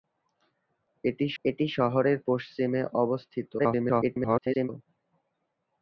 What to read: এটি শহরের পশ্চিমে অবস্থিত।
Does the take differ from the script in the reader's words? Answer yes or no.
yes